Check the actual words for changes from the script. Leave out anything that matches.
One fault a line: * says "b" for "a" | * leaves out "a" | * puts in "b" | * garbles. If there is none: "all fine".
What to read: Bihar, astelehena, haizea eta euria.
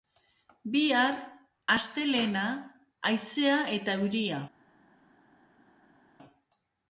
all fine